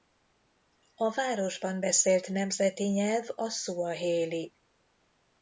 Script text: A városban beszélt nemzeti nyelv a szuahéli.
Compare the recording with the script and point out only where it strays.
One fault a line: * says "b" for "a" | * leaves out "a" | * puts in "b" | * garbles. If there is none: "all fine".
all fine